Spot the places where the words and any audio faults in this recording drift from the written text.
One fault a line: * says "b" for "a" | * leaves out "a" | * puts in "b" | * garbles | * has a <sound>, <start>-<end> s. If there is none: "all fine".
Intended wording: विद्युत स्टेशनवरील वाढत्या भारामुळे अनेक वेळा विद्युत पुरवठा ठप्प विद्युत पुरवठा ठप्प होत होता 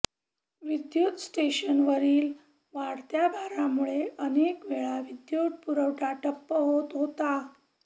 * leaves out "विद्युत पुरवठा ठप्प"